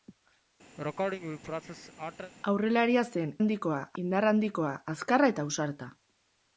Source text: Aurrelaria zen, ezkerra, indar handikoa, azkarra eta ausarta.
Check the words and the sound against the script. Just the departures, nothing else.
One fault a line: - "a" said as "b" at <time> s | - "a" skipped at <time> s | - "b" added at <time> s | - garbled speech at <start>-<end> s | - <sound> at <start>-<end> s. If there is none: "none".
- sneeze at 0.8-2.3 s
- "ezkerra" said as "handikoa" at 3.4 s